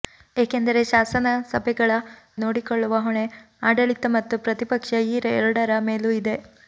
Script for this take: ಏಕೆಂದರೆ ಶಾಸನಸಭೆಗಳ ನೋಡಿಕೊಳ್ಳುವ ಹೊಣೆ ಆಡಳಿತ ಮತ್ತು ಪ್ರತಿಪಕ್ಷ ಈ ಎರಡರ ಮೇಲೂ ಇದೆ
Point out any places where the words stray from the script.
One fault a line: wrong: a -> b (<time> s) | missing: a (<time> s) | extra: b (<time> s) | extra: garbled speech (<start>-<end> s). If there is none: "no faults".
no faults